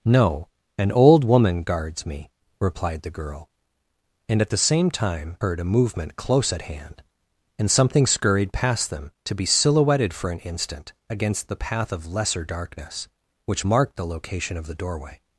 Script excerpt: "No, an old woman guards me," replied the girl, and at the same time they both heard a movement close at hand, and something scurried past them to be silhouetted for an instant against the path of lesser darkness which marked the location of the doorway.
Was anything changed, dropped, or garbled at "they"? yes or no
yes